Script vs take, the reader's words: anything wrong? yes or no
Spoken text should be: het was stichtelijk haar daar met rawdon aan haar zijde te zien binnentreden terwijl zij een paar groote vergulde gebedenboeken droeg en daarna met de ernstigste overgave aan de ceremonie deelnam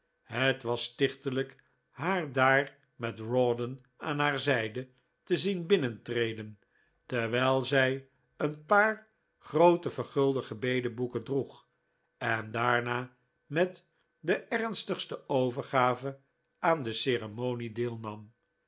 no